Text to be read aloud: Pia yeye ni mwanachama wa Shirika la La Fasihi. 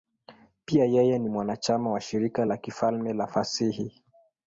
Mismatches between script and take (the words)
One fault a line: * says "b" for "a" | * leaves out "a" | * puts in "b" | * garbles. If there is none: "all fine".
* puts in "Kifalme"